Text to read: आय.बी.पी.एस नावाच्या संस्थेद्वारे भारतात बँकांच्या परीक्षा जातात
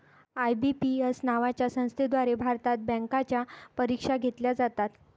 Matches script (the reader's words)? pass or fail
fail